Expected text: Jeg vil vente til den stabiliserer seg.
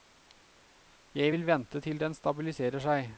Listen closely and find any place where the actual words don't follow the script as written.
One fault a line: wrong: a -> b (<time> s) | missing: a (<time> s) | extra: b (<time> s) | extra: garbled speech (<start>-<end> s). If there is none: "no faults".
no faults